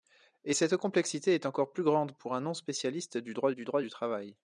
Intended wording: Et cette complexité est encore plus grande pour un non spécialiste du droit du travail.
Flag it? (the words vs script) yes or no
yes